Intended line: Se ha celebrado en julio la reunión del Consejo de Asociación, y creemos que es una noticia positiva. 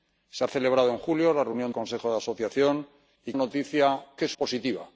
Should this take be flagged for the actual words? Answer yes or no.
yes